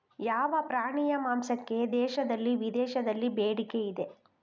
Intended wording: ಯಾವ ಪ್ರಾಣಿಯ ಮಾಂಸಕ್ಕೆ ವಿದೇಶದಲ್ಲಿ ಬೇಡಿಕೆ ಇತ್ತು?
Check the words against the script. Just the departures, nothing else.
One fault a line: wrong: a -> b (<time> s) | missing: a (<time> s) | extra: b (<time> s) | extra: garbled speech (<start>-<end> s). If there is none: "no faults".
extra: ದೇಶದಲ್ಲಿ (1.9 s)
wrong: ಇತ್ತು -> ಇದೆ (3.9 s)